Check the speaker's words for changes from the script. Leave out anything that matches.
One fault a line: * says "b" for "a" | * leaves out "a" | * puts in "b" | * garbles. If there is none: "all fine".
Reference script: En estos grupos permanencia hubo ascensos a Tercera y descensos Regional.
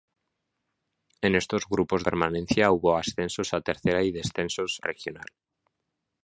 all fine